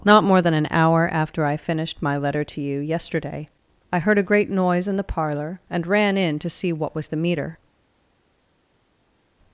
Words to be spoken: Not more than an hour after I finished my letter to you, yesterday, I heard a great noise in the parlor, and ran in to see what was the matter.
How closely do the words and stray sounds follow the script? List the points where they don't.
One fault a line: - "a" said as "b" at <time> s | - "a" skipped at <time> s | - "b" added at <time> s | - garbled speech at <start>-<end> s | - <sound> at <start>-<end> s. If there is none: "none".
- "matter" said as "meter" at 7.2 s